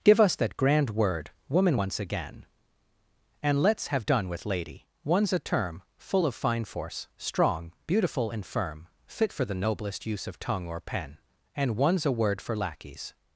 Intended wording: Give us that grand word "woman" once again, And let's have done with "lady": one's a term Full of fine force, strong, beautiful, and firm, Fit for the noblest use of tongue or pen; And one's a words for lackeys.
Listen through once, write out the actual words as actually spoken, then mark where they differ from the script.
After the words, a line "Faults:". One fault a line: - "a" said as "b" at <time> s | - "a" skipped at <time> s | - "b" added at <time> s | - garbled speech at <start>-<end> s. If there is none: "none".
Give us that grand word "woman" once again, And let's have done with "lady": one's a term Full of fine force, strong, beautiful, and firm, Fit for the noblest use of tongue or pen; And one's a word for lackeys.
Faults:
- "words" said as "word" at 12.1 s